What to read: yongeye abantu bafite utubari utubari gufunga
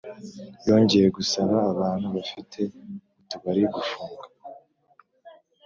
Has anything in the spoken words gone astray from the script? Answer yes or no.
yes